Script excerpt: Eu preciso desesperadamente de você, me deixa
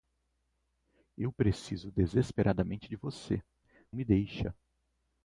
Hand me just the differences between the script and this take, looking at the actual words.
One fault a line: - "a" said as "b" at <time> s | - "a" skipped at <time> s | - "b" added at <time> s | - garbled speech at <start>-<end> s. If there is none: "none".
none